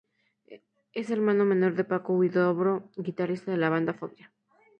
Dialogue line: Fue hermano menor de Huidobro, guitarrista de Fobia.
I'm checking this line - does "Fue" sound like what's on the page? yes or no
no